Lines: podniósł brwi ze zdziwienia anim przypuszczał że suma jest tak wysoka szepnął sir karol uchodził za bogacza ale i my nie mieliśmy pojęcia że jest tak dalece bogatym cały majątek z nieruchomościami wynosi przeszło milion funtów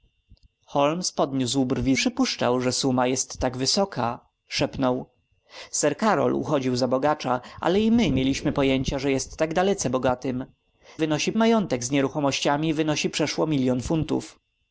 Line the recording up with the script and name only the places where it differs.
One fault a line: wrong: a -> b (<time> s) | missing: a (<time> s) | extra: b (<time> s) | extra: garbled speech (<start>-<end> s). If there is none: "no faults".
missing: ze zdziwienia anim (1.9 s)
missing: nie (8.1 s)
wrong: cały -> wynosi (11.0 s)